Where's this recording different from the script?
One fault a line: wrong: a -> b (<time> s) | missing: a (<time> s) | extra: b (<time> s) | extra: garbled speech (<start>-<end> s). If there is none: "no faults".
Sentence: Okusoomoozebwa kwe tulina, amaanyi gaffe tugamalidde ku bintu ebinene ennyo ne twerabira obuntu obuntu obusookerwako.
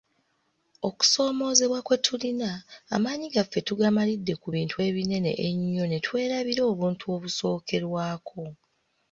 missing: obuntu (7.0 s)